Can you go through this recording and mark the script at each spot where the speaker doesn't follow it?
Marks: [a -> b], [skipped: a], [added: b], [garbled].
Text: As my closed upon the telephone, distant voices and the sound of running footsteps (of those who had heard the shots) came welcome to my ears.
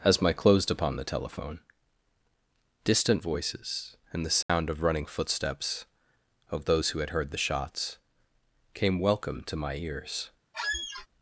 As my closed upon the telephone, distant voices and the sound of running footsteps (of those who had heard the shots) came welcome to my ears.